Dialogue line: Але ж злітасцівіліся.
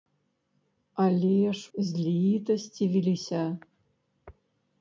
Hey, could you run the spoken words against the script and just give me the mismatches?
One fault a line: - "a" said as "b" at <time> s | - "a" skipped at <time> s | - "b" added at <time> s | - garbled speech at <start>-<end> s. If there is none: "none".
none